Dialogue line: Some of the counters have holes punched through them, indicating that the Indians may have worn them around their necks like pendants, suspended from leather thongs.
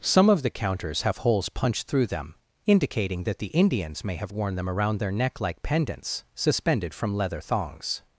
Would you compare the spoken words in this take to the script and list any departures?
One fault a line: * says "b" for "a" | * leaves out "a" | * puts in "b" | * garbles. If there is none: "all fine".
* says "neck" for "necks"